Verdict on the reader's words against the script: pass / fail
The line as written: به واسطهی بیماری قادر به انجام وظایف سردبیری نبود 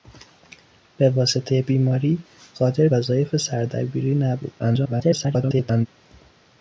fail